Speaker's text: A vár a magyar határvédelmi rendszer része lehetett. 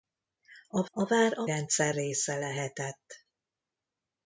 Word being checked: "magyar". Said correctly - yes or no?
no